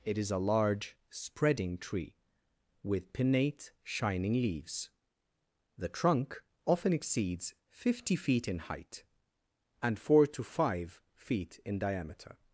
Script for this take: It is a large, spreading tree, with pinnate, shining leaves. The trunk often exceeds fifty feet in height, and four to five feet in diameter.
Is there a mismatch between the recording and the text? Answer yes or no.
no